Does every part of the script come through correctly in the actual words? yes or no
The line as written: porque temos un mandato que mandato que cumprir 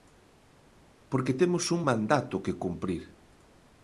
no